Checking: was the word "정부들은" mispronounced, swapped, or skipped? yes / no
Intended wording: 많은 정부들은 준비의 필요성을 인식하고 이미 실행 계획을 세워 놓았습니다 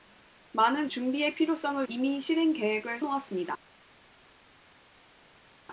yes